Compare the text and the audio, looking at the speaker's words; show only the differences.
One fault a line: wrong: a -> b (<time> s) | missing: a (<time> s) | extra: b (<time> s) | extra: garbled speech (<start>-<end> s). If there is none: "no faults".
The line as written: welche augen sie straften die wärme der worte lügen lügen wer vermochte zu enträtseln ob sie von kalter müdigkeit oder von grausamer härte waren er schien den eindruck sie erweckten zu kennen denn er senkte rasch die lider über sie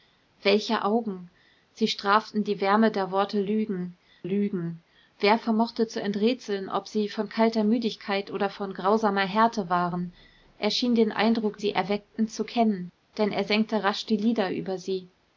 no faults